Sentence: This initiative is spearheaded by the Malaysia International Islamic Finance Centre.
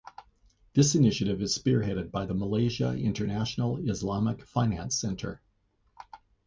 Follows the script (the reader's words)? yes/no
yes